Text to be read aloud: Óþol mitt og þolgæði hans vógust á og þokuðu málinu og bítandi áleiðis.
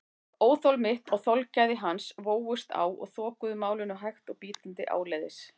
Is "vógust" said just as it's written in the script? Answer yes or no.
yes